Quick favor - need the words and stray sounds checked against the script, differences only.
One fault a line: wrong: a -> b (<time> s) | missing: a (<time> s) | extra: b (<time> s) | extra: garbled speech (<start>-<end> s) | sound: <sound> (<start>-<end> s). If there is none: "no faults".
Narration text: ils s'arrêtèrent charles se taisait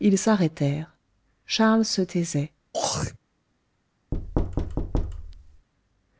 sound: throat clearing (2.7-3.2 s)
sound: thud (4.1-5.7 s)